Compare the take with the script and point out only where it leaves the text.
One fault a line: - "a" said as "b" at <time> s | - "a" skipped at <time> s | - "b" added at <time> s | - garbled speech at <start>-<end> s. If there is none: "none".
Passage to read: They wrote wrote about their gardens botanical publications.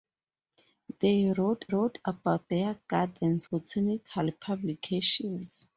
none